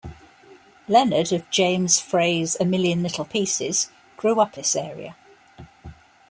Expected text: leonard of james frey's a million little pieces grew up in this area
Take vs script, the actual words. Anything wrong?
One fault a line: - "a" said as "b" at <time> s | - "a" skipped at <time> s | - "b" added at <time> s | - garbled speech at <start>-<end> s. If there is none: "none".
- "in" skipped at 4.6 s